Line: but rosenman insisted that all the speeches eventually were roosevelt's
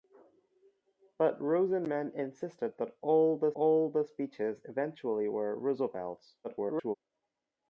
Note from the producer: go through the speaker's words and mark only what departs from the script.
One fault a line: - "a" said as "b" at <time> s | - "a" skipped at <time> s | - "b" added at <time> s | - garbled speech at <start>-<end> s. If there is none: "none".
- "all the" added at 3.5 s
- garbled speech at 6.4-7.0 s